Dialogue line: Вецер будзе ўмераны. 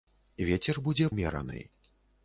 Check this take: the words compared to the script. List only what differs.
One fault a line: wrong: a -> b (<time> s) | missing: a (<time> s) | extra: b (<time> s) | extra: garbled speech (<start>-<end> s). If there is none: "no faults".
no faults